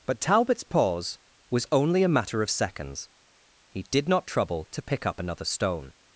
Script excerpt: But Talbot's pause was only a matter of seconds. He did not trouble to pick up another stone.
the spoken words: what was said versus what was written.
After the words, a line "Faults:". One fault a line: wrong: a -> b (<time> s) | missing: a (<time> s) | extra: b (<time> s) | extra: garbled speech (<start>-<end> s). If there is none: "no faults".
But Talbot's pause was only a matter of seconds. He did not trouble to pick up another stone.
Faults:
no faults